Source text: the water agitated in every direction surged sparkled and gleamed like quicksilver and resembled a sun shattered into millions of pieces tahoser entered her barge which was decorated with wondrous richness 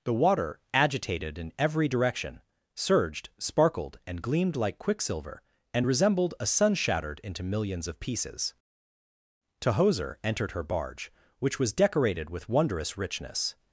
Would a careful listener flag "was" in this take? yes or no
no